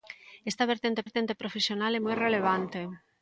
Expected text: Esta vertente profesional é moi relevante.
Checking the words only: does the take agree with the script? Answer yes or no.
no